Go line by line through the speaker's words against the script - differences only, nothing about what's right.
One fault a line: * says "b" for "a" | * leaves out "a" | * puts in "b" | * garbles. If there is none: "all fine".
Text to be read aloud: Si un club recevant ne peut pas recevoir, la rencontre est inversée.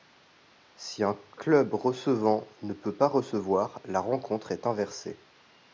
all fine